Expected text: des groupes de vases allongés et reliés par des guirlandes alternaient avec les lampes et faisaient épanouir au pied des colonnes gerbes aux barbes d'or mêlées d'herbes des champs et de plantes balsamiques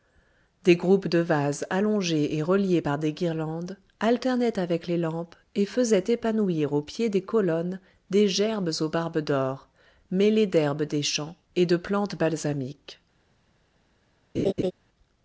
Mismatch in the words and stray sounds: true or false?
true